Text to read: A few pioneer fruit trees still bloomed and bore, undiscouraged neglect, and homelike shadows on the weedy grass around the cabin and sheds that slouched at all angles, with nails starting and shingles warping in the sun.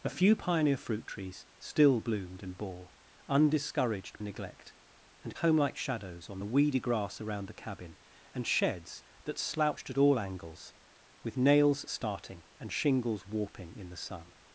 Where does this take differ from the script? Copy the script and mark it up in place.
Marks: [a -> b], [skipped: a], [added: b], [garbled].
A few pioneer fruit trees still bloomed and bore, undiscouraged neglect, and homelike shadows on the weedy grass around the cabin and sheds that slouched at all angles, with nails starting and shingles warping in the sun.